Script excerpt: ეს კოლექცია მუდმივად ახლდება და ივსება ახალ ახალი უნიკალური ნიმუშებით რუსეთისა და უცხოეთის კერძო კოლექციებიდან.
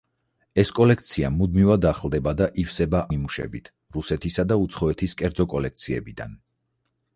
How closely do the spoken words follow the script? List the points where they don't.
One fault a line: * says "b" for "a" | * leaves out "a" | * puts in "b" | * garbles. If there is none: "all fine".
* leaves out "ახალ ახალი უნიკალური"